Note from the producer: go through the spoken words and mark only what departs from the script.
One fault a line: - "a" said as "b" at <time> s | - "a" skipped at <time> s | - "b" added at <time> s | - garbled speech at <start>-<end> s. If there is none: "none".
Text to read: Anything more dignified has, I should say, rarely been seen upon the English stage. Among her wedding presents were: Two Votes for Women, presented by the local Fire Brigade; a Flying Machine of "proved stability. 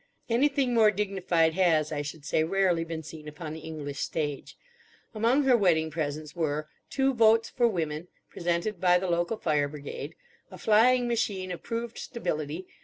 none